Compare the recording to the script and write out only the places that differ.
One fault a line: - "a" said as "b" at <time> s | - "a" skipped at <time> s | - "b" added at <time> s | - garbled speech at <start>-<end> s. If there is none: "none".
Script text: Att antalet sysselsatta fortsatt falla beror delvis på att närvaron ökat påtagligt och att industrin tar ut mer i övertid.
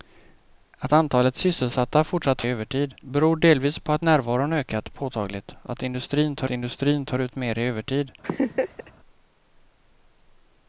- "falla" said as "övertid" at 2.5 s
- "industrin tar" added at 6.5 s